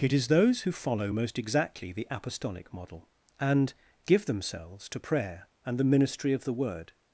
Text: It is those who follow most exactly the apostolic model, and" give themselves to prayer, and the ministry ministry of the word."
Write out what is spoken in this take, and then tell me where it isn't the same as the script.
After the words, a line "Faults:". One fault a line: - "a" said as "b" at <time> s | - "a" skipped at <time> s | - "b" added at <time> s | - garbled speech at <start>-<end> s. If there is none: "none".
It is those who follow most exactly the apostolic model, and" give themselves to prayer, and the ministry of the word."
Faults:
- "ministry" skipped at 6.3 s